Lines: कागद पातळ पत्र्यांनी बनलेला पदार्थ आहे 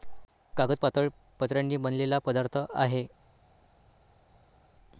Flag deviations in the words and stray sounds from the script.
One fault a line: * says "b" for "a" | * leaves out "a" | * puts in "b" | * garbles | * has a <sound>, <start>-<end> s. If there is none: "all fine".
all fine